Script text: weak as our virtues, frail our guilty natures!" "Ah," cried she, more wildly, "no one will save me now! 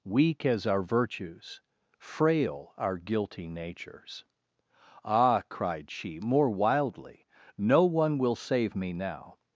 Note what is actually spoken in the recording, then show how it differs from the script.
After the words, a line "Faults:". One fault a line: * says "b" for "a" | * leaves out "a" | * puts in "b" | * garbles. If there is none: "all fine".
weak as our virtues, frail our guilty natures!" "Ah," cried she, more wildly, "no one will save me now!
Faults:
all fine